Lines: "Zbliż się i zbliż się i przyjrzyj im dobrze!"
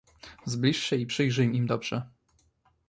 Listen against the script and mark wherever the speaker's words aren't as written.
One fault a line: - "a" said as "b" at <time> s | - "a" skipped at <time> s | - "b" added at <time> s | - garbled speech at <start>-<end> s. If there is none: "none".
- "zbliż się i" skipped at 1.1 s